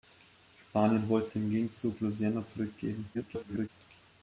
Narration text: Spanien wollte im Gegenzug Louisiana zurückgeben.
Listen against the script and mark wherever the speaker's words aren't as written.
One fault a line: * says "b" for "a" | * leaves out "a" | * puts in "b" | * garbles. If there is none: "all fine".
* garbles